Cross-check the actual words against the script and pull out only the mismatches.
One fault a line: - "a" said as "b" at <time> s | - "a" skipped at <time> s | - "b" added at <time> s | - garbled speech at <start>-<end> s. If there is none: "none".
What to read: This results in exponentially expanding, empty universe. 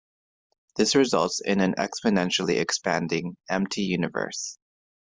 - "an" added at 1.6 s